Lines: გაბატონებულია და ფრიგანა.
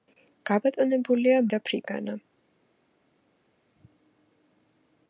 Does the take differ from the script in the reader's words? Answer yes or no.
no